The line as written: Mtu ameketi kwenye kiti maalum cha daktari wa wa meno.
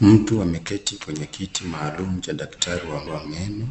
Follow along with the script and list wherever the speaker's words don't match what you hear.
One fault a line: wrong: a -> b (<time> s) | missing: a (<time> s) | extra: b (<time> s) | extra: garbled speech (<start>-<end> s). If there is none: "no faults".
no faults